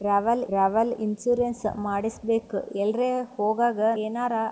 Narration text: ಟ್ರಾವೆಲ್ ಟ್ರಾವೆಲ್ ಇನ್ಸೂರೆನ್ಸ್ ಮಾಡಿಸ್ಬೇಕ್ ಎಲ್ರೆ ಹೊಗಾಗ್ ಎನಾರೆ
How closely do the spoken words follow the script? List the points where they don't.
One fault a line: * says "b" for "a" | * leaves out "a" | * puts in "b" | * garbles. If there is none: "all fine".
all fine